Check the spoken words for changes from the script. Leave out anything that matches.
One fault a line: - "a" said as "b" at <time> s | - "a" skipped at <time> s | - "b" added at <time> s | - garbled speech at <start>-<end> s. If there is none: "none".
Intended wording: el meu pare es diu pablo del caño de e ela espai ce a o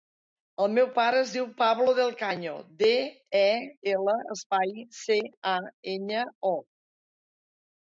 - "enya" added at 6.0 s